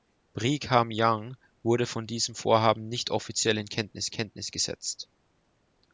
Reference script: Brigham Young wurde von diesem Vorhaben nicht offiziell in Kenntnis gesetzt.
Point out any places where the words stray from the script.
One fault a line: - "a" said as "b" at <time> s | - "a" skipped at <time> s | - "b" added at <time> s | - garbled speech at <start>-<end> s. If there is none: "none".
- "Kenntnis" added at 4.1 s